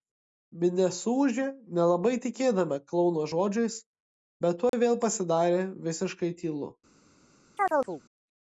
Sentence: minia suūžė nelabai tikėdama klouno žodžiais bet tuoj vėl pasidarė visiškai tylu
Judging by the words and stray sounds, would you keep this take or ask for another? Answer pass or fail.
fail